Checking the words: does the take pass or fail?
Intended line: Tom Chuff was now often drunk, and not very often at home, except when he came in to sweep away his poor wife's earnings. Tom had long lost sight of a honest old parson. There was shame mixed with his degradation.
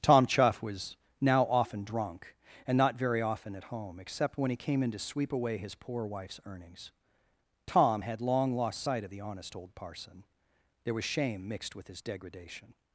fail